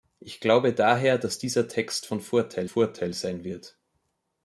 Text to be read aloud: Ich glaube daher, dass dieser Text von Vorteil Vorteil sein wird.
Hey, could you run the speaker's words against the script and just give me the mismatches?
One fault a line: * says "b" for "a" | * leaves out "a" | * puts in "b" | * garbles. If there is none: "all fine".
all fine